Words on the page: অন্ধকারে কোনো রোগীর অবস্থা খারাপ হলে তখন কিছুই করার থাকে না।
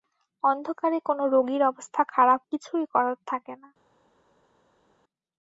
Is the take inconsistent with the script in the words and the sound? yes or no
yes